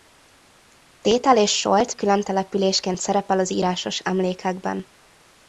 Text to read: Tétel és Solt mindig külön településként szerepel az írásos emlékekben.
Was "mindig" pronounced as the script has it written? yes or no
no